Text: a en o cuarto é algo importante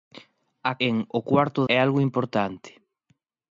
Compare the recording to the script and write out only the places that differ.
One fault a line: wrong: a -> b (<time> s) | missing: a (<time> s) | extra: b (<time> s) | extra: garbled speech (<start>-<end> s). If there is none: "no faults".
no faults